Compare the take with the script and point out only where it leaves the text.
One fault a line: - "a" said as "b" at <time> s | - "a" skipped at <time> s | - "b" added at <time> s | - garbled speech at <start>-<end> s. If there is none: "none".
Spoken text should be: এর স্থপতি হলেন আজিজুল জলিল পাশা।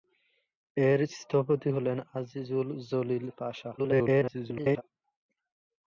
- garbled speech at 3.8-4.8 s